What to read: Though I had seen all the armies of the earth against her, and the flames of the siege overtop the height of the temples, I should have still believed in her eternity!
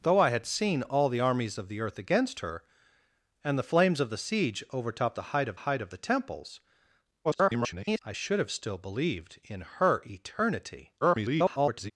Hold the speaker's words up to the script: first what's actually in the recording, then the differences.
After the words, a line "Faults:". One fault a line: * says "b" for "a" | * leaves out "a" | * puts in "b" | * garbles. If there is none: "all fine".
Though I had seen all the armies of the earth against her, and the flames of the siege overtop the height of height of the temples, [garbled] I should have still believed in her eternity! [garbled]
Faults:
* puts in "height of"
* garbles
* garbles